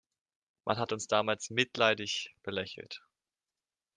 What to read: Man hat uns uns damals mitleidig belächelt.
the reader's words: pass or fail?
fail